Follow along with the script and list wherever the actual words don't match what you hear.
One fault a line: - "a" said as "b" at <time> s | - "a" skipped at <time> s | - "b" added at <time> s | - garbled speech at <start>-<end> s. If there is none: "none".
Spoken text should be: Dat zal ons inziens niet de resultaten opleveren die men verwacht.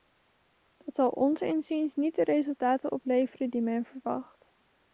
none